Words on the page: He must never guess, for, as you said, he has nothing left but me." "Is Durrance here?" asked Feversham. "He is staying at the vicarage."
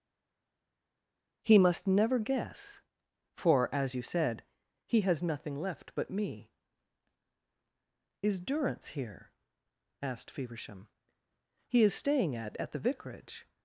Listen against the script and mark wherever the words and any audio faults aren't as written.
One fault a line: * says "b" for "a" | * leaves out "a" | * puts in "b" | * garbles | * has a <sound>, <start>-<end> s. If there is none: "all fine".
* puts in "at"